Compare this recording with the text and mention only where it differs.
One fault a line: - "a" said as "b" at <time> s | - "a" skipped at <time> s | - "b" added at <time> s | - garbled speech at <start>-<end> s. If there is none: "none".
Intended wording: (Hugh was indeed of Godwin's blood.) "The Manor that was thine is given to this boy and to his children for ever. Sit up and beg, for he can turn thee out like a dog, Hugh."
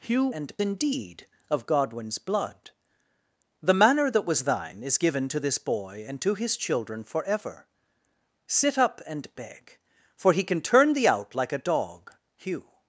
- "was" said as "and" at 0.3 s